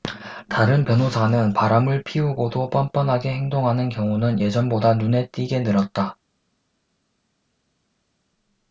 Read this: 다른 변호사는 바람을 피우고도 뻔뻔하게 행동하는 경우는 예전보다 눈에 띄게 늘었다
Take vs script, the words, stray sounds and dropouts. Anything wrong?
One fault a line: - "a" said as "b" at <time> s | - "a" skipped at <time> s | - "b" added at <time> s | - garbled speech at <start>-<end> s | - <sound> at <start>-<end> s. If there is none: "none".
none